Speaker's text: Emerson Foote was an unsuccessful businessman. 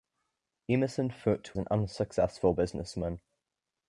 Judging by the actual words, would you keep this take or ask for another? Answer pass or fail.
fail